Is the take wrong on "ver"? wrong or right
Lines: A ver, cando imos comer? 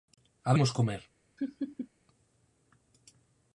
wrong